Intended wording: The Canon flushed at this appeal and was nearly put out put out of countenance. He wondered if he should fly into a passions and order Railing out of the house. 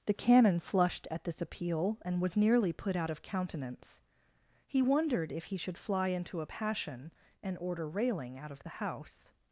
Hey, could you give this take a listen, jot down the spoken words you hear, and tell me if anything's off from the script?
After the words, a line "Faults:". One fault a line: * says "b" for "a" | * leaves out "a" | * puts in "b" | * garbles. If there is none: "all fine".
The Canon flushed at this appeal and was nearly put out of countenance. He wondered if he should fly into a passion and order Railing out of the house.
Faults:
* leaves out "put out"
* says "passion" for "passions"